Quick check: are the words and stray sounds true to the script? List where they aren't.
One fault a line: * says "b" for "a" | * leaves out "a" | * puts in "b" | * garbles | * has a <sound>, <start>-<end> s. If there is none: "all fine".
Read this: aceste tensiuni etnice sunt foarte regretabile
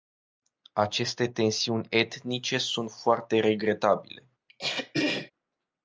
* has a throat clearing, 4.5-5.3 s